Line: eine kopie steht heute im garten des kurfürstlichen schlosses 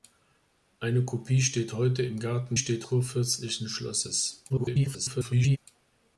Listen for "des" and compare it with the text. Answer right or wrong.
wrong